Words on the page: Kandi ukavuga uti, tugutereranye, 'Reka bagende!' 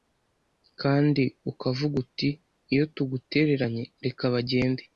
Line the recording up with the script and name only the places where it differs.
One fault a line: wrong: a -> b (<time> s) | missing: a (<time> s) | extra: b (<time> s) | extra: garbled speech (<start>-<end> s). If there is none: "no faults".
extra: iyo (2.7 s)